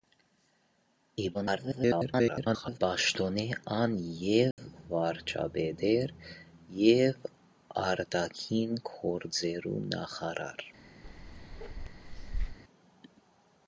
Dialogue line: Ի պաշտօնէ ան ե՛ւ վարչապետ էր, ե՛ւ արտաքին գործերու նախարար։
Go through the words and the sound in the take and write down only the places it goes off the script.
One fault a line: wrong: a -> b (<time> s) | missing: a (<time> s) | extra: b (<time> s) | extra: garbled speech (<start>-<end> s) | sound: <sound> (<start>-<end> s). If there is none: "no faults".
extra: garbled speech (1.3-2.8 s)
sound: dropout (4.5-4.6 s)
sound: bark (11.0-12.6 s)